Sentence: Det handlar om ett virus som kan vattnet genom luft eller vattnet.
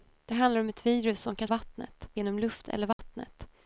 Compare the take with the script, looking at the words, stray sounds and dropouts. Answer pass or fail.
fail